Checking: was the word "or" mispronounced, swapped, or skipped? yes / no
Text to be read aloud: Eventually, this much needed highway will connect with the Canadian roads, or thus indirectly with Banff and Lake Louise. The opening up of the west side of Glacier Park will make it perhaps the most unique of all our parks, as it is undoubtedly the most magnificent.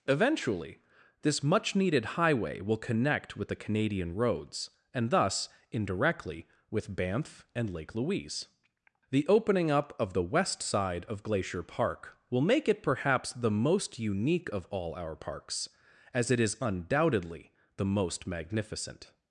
yes